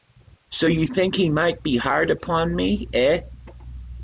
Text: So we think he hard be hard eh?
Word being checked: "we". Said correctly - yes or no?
no